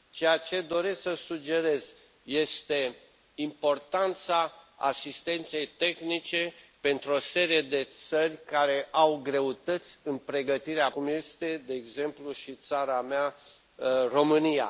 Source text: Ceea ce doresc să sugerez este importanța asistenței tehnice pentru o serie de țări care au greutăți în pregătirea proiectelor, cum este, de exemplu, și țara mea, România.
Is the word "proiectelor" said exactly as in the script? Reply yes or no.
no